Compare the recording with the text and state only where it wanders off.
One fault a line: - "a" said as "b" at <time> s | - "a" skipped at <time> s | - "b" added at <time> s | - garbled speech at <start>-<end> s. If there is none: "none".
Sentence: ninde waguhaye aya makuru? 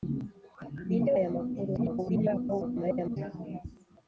- "waguhaye" skipped at 1.1 s
- garbled speech at 1.8-3.2 s